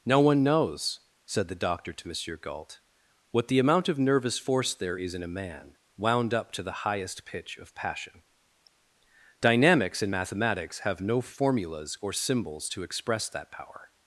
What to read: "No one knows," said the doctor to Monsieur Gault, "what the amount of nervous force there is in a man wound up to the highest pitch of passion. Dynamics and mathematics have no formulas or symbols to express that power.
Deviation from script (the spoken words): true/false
false